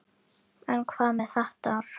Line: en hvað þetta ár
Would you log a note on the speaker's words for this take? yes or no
yes